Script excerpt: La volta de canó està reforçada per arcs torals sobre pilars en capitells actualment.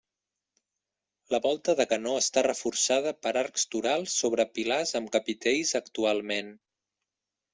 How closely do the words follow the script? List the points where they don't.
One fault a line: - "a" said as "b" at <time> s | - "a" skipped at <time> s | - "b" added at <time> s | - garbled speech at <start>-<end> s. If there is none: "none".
- "en" said as "amb" at 5.0 s